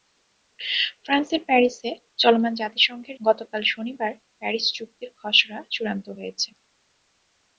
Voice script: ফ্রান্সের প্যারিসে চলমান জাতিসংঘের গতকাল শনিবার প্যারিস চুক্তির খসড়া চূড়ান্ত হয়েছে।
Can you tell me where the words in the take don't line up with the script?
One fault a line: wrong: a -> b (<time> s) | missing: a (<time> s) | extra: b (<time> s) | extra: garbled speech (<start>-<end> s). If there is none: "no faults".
no faults